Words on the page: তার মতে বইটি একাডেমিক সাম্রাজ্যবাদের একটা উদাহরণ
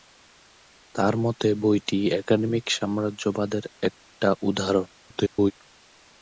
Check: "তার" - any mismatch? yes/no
no